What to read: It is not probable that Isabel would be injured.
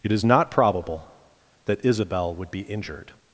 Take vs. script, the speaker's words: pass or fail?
pass